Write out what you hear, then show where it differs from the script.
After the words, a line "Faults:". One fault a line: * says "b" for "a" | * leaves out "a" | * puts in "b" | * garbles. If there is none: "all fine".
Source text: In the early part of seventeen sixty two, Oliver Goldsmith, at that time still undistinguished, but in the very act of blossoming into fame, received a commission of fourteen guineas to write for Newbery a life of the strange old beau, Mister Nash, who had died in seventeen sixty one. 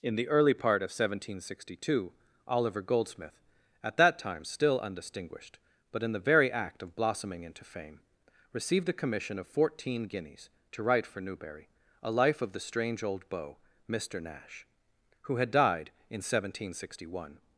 In the early part of seventeen sixty two, Oliver Goldsmith, at that time still undistinguished, but in the very act of blossoming into fame, received a commission of fourteen guineas to write for Newbery a life of the strange old beau, Mister Nash, who had died in seventeen sixty one.
Faults:
all fine